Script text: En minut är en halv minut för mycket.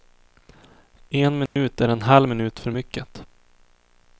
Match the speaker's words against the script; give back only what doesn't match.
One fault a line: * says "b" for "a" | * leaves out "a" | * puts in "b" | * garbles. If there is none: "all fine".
all fine